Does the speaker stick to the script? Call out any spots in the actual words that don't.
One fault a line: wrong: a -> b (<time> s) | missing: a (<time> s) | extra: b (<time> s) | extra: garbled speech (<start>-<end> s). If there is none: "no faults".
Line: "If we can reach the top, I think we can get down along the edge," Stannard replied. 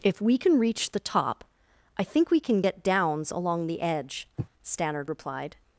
wrong: down -> downs (2.8 s)